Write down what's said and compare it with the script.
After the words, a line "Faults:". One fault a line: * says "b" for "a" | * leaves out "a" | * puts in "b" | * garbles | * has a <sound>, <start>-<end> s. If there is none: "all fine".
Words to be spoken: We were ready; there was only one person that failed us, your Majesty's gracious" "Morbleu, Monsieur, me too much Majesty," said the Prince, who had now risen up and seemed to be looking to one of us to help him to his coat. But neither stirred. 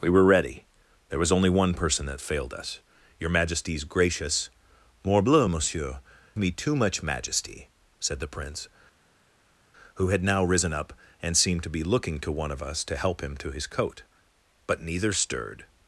We were ready; there was only one person that failed us, your Majesty's gracious" "Morbleu, Monsieur, me too much Majesty," said the Prince, who had now risen up and seemed to be looking to one of us to help him to his coat. But neither stirred.
Faults:
all fine